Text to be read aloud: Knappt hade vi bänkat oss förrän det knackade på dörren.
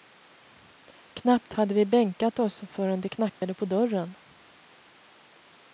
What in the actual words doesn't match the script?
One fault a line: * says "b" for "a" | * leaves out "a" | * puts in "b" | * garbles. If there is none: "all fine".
all fine